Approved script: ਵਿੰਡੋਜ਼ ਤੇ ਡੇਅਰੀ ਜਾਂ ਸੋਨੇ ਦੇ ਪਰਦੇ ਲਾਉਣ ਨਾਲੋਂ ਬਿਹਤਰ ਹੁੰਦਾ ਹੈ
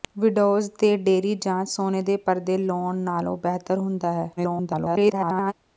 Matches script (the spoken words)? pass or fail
fail